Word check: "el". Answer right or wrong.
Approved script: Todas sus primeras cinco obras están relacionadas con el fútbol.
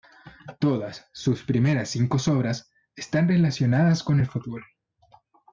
right